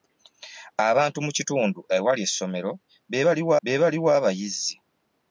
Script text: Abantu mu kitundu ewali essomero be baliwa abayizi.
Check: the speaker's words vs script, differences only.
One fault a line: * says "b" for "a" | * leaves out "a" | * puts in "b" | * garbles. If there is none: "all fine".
* puts in "be baliwa"